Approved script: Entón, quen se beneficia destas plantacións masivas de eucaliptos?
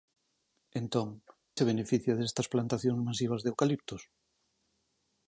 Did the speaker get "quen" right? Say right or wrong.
wrong